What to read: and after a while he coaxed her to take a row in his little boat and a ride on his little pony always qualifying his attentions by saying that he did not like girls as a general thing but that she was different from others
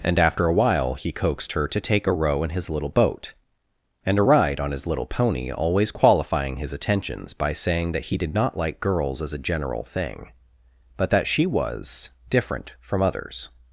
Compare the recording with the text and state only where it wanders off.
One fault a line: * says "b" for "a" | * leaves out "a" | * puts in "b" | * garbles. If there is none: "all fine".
all fine